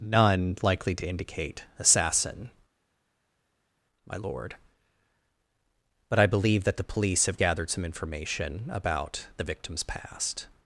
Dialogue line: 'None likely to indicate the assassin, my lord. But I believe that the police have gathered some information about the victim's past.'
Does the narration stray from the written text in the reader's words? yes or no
yes